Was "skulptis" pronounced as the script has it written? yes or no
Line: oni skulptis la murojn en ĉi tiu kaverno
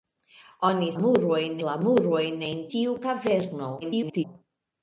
no